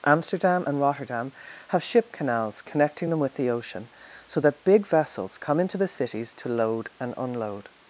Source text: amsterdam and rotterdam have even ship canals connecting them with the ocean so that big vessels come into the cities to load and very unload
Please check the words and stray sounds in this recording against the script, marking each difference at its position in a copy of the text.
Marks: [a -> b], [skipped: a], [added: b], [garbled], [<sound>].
amsterdam and rotterdam have [skipped: even] ship canals connecting them with the ocean so that big vessels come into the cities [dropout] to load and [skipped: very] unload